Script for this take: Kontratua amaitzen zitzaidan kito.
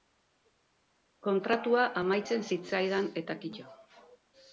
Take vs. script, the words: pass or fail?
fail